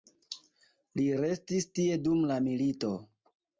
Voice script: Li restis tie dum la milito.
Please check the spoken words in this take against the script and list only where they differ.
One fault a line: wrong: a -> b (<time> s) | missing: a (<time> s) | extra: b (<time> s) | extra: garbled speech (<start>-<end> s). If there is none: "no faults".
no faults